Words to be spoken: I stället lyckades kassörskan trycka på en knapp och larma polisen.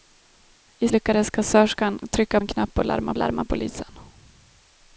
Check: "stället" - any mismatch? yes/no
yes